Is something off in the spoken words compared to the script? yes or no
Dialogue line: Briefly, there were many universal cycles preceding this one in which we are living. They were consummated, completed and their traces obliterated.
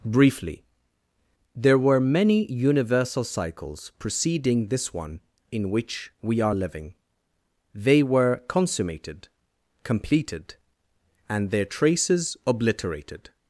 no